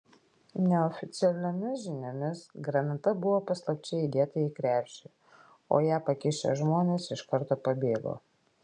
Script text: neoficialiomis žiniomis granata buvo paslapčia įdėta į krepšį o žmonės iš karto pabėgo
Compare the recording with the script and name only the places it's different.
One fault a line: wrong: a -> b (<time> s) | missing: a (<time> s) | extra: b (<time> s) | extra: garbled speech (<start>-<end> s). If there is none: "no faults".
extra: ją pakišę (5.9 s)